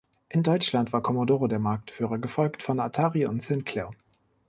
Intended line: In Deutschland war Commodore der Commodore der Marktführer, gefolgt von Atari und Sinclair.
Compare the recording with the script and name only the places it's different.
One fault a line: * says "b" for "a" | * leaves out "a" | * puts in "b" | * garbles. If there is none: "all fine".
* leaves out "Commodore der"